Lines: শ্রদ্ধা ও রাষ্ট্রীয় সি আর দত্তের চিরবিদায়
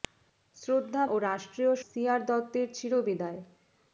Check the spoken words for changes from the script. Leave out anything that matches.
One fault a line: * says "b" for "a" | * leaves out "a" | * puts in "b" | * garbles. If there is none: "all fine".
all fine